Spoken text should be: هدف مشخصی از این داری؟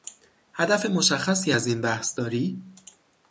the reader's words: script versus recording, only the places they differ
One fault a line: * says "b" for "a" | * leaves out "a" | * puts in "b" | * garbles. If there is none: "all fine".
* puts in "بحث"